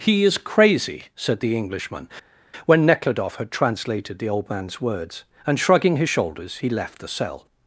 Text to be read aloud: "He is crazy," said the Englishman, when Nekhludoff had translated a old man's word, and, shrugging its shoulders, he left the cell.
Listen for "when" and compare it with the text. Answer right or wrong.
right